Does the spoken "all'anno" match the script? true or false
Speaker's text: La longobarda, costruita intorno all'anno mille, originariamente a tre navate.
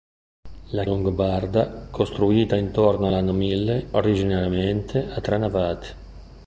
true